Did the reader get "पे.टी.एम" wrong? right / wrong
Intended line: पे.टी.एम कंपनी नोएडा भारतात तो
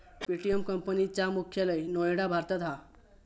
right